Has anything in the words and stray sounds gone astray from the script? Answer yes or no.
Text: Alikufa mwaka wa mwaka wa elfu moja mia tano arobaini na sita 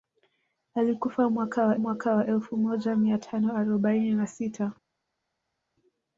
no